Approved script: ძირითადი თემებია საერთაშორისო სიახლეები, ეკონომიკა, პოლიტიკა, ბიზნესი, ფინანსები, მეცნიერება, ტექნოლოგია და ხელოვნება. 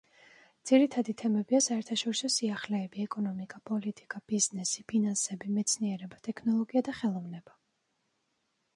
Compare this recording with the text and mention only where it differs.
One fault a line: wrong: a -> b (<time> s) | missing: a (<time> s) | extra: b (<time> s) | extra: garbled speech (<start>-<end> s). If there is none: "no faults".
no faults